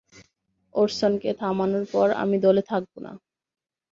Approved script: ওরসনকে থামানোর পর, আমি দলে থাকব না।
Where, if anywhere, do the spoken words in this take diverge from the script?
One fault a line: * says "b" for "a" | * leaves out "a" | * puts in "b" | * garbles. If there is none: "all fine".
all fine